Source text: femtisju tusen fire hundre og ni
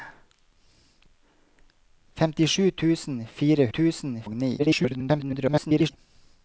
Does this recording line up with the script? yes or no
no